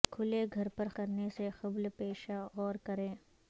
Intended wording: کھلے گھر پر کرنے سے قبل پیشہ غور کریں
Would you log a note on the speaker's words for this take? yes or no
no